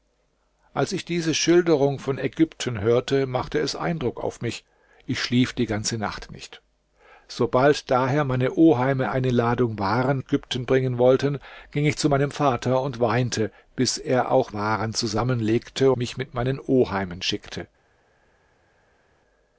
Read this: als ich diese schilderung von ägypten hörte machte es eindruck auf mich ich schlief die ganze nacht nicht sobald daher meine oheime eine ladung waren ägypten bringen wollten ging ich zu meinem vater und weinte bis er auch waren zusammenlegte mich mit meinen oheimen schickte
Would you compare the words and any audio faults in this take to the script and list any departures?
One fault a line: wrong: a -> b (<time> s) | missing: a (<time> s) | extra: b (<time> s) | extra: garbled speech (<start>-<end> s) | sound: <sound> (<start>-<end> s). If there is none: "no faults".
no faults